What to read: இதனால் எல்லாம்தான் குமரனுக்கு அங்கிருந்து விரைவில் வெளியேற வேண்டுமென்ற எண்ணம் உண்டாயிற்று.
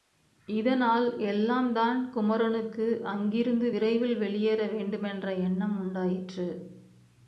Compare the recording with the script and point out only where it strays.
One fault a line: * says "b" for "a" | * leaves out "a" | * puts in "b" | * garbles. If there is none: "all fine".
all fine